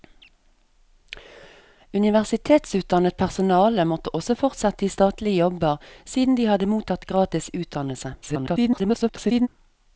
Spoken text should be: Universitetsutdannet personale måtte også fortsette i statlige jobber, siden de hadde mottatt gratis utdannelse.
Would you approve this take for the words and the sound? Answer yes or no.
no